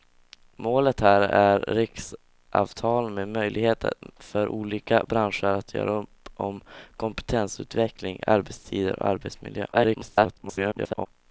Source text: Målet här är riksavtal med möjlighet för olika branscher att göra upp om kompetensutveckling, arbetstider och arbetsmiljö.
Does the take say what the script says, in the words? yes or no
no